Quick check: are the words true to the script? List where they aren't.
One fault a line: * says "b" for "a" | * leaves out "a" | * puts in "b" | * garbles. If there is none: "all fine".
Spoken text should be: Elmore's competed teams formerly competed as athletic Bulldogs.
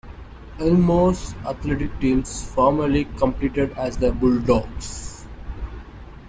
* says "athletic" for "competed"
* says "the" for "athletic"